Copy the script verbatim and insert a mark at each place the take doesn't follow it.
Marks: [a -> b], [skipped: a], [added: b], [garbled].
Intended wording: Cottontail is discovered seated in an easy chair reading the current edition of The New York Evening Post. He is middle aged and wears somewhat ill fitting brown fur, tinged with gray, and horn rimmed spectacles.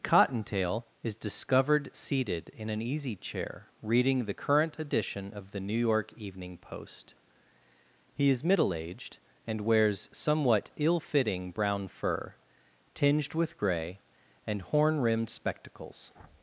Cottontail is discovered seated in an easy chair reading the current edition of The New York Evening Post. He is middle aged and wears somewhat ill fitting brown fur, tinged with gray, and horn rimmed spectacles.